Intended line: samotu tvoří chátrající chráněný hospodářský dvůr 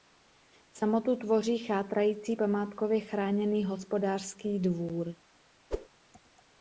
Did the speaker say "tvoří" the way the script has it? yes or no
yes